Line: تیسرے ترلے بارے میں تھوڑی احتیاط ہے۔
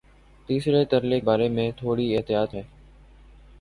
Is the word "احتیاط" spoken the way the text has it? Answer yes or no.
yes